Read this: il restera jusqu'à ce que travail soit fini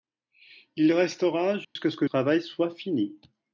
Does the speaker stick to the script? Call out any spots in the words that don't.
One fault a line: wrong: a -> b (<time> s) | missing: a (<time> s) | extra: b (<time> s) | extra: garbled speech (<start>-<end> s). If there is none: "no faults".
no faults